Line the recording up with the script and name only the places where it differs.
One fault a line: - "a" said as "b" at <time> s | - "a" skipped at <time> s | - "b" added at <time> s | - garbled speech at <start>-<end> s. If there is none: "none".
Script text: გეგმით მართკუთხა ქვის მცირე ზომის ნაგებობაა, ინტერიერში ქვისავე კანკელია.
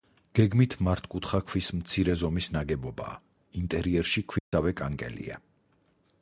none